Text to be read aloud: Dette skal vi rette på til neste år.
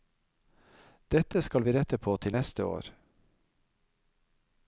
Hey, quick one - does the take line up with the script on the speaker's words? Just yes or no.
yes